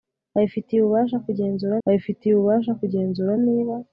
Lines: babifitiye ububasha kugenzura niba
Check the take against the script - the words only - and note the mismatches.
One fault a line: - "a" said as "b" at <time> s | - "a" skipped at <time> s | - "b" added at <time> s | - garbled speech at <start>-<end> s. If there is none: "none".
- "babifitiye ububasha kugenzura" added at 1.8 s